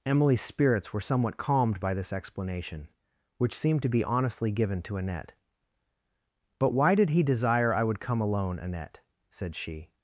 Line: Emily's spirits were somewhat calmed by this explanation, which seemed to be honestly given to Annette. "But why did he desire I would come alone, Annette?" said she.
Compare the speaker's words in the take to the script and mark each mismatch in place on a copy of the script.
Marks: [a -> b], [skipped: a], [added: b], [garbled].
Emily's spirits were somewhat calmed by this explanation, which seemed to be honestly given to Annette. "But why did he desire I would come alone, Annette?" said she.